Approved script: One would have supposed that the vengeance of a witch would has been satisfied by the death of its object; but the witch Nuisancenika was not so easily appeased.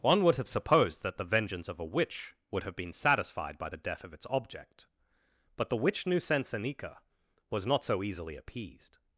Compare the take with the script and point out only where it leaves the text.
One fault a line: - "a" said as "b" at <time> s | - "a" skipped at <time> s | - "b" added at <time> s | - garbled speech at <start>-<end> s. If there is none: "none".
- "has" said as "have" at 2.6 s